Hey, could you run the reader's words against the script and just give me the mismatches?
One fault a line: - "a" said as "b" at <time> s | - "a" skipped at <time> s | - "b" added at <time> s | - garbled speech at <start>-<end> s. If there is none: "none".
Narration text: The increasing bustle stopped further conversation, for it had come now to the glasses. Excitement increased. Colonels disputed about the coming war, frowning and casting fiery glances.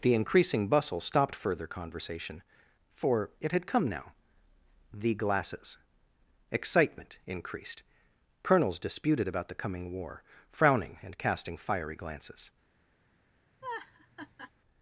- "to" skipped at 4.1 s